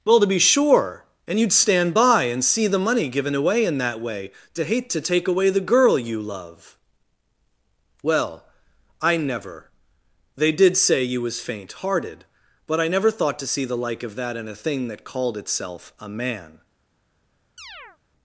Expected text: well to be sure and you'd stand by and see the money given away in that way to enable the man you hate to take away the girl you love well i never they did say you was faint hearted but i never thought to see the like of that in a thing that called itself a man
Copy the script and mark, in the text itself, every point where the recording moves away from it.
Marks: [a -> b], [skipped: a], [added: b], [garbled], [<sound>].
well to be sure and you'd stand by and see the money given away in that way to [skipped: enable the man you] hate to take away the girl you love well i never they did say you was faint hearted but i never thought to see the like of that in a thing that called itself a man [chirp]